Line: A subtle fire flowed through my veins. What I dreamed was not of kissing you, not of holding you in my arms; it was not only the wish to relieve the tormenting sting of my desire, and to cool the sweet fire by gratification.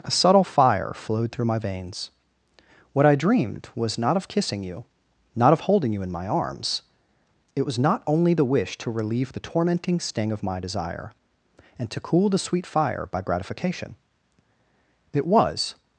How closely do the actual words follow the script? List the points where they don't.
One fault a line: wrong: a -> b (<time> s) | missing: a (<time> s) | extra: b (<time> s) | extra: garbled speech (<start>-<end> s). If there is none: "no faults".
extra: It was (15.1 s)